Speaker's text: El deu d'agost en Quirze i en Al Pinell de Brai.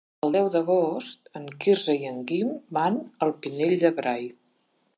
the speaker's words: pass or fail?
fail